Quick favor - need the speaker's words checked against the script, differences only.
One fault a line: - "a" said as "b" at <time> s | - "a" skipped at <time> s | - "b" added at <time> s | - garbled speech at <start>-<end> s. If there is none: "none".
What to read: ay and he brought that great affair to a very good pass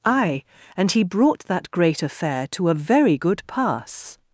none